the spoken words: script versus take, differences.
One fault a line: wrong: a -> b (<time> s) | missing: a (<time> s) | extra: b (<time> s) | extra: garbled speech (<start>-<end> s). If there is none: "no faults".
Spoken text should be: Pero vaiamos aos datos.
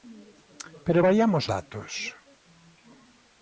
missing: aos (1.4 s)